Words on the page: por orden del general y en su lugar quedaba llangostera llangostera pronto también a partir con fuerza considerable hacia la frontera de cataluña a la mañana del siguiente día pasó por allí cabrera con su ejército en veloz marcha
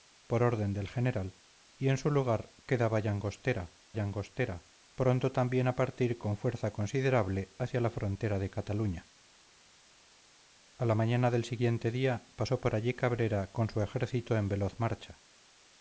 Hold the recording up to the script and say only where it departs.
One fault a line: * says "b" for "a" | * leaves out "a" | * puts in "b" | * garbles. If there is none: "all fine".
all fine